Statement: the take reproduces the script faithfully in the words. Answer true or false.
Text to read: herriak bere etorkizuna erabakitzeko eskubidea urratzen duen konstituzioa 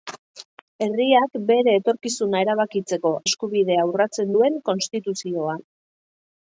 true